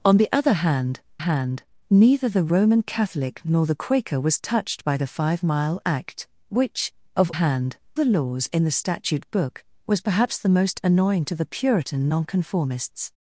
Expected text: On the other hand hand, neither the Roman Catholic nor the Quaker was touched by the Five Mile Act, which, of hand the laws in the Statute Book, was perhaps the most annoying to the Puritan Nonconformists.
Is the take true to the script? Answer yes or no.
yes